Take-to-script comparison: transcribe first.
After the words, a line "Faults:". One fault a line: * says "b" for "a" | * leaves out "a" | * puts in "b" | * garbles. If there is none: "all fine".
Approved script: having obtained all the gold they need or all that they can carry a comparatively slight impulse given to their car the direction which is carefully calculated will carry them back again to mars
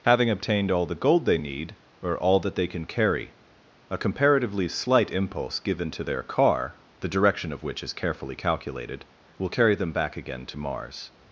having obtained all the gold they need or all that they can carry a comparatively slight impulse given to their car the direction of which is carefully calculated will carry them back again to mars
Faults:
* puts in "of"